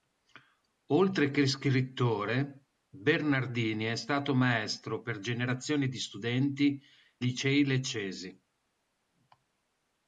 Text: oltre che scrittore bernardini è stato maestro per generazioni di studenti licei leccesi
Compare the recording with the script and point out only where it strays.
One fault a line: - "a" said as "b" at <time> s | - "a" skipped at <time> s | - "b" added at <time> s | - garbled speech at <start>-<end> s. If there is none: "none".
none